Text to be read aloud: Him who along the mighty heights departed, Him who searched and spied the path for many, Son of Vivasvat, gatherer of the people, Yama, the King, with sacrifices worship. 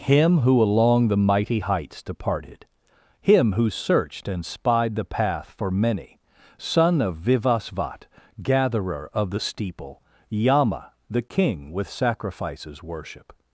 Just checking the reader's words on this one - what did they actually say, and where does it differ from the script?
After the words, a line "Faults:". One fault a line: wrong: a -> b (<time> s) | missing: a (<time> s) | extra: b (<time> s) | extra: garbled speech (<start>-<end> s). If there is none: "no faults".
Him who along the mighty heights departed, Him who searched and spied the path for many, Son of Vivasvat, gatherer of the steeple, Yama, the King, with sacrifices worship.
Faults:
wrong: people -> steeple (9.4 s)